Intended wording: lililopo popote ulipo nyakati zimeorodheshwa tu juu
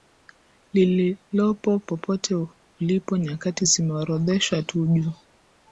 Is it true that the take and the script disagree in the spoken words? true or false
false